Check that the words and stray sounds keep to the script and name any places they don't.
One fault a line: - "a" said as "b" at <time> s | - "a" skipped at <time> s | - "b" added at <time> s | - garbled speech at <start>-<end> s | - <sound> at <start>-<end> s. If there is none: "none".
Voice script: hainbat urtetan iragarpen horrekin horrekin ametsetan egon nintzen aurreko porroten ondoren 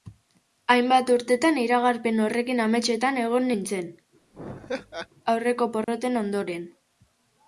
- "horrekin" skipped at 2.6 s
- laugh at 4.3-5.1 s
- dropout at 5.8-5.9 s